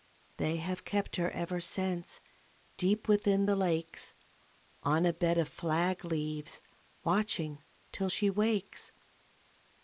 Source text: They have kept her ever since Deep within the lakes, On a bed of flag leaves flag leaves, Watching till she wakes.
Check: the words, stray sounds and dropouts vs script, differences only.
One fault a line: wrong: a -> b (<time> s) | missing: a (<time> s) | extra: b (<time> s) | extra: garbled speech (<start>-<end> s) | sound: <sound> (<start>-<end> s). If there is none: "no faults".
missing: flag leaves (6.6 s)